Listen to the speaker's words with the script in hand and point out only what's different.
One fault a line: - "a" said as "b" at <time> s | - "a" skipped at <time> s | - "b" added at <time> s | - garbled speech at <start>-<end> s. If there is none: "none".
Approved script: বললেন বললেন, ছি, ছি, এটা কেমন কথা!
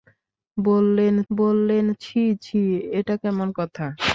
none